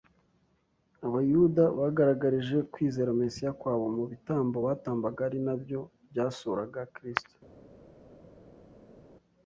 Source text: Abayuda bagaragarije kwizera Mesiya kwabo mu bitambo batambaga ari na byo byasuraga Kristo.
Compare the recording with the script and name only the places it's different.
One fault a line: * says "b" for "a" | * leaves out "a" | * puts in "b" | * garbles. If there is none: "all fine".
all fine